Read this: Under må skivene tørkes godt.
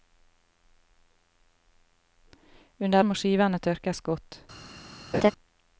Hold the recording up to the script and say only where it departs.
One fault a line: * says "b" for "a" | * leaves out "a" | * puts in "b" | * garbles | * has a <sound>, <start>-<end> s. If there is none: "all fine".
* has a laugh, 5.1-5.3 s